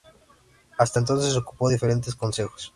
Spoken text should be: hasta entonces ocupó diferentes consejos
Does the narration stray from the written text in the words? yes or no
no